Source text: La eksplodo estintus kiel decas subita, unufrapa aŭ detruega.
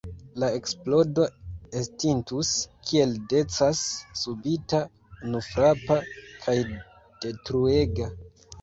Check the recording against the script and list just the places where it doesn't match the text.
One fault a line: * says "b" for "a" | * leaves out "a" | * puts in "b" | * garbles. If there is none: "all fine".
* says "kaj" for "aŭ"